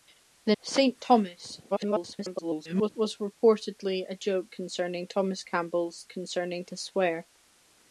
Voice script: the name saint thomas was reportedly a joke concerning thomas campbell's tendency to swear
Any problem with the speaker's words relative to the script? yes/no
yes